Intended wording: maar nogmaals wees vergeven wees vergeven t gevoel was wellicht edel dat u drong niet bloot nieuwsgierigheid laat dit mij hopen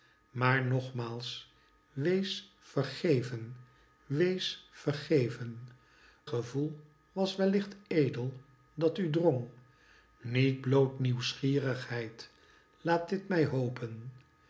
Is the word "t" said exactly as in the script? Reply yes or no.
no